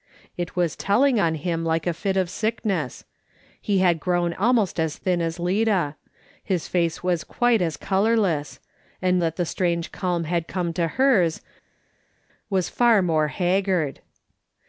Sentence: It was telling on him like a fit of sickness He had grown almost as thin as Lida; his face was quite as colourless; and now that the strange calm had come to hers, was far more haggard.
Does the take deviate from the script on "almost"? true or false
false